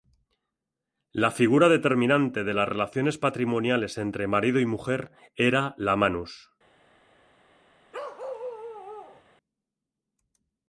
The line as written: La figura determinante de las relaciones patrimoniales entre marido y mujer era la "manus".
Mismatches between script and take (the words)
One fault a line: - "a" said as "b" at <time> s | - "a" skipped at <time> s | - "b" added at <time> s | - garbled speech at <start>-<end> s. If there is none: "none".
none